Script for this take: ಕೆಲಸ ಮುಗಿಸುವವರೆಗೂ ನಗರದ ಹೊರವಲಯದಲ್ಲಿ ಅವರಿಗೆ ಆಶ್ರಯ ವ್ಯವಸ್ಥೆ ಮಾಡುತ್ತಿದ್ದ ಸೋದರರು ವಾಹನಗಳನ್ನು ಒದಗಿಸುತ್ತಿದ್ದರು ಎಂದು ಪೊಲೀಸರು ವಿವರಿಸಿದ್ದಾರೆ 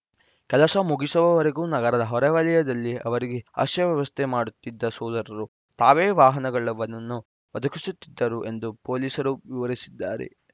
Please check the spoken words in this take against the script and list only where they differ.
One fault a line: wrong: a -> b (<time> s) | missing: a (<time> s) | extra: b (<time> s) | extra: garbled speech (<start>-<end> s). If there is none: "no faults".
extra: ತಾವೇ (5.8 s)